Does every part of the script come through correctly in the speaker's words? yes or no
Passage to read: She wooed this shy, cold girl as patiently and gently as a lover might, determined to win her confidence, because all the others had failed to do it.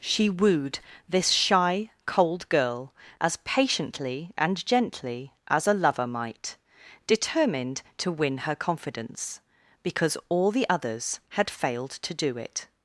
yes